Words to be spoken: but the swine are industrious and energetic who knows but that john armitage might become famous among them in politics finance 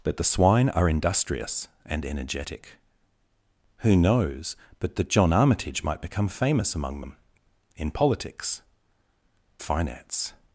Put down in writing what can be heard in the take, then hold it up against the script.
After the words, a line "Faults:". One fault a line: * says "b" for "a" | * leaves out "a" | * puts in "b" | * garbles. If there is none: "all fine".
but the swine are industrious and energetic who knows but that john armitage might become famous among them in politics finance
Faults:
all fine